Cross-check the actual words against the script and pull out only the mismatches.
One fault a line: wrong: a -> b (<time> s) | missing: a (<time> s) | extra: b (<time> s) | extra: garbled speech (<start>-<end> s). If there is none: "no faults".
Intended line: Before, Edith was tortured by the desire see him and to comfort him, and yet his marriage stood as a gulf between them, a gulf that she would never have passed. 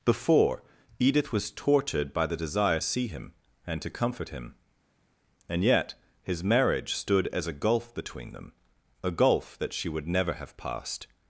no faults